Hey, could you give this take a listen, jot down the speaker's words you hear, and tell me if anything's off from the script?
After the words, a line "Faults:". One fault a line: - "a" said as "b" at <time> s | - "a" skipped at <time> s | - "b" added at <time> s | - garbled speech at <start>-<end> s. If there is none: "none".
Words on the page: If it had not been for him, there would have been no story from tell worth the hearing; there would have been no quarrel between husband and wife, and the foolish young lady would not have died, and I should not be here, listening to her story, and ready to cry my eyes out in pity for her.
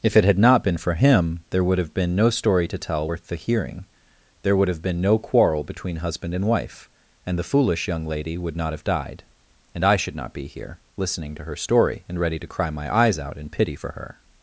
If it had not been for him, there would have been no story to tell worth the hearing; there would have been no quarrel between husband and wife, and the foolish young lady would not have died, and I should not be here, listening to her story, and ready to cry my eyes out in pity for her.
Faults:
- "from" said as "to" at 2.7 s